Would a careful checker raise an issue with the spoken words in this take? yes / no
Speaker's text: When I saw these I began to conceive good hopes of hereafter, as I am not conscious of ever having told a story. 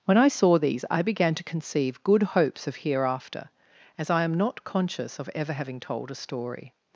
no